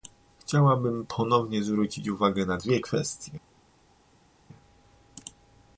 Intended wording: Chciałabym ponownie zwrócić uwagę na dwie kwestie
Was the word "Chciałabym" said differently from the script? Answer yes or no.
no